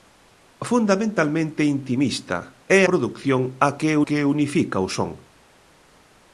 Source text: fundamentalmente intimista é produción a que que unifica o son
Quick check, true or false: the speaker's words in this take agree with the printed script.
true